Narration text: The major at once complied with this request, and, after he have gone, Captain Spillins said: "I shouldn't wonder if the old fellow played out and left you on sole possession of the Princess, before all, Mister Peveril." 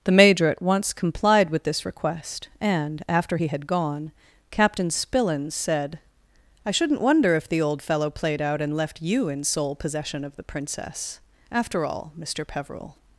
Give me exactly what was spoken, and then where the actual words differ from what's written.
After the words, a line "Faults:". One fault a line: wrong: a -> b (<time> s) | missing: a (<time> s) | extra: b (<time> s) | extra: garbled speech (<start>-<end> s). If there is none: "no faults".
The major at once complied with this request, and, after he had gone, Captain Spillins said: "I shouldn't wonder if the old fellow played out and left you in sole possession of the Princess, after all, Mister Peveril."
Faults:
wrong: have -> had (3.5 s)
wrong: on -> in (9.3 s)
wrong: before -> after (11.5 s)